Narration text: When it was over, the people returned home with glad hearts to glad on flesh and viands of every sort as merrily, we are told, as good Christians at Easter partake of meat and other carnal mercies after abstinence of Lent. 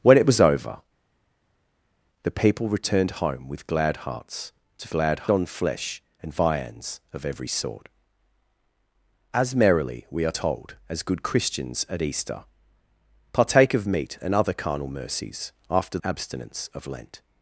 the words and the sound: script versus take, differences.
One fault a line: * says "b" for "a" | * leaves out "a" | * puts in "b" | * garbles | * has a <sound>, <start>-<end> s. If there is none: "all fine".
all fine